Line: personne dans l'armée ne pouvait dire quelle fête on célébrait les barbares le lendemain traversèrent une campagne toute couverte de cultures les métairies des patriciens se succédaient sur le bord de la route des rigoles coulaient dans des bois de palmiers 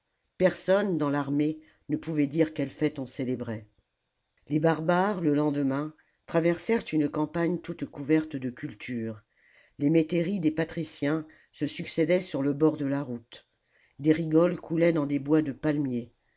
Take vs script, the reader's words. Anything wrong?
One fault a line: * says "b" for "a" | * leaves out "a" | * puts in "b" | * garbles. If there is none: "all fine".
all fine